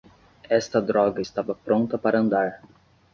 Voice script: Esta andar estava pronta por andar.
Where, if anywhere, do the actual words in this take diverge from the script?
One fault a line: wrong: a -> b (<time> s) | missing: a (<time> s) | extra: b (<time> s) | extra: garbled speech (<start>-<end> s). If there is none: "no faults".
wrong: andar -> droga (0.8 s)
wrong: por -> para (2.0 s)